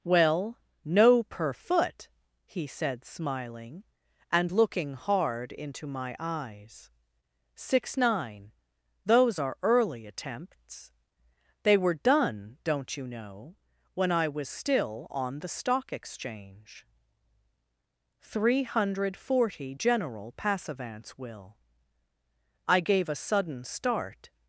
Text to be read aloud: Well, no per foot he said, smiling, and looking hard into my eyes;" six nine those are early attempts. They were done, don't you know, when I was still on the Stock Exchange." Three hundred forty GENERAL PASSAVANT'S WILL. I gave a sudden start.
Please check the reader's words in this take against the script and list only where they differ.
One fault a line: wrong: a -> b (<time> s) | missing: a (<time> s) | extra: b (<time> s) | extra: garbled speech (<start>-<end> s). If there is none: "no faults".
no faults